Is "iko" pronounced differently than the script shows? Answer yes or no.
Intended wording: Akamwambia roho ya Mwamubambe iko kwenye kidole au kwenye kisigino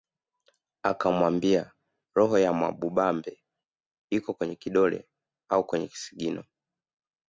no